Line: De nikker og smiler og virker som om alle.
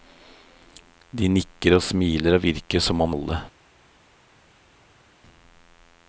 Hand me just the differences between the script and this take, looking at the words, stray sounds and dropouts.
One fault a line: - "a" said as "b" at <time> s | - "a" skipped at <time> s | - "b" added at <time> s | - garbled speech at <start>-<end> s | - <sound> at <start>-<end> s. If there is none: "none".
none